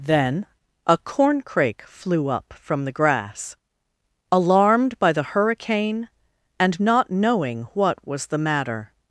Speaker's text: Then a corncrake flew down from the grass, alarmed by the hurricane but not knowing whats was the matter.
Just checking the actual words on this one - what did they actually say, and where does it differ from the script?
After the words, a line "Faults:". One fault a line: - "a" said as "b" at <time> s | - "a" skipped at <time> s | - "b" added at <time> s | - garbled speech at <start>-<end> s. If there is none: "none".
Then a corncrake flew up from the grass, alarmed by the hurricane and not knowing what was the matter.
Faults:
- "down" said as "up" at 2.3 s
- "but" said as "and" at 6.6 s
- "whats" said as "what" at 7.8 s